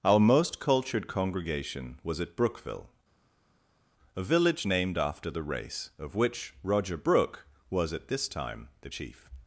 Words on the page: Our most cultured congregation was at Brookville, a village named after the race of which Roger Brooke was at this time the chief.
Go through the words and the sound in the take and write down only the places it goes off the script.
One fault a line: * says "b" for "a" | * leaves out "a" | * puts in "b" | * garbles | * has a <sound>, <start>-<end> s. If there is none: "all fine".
all fine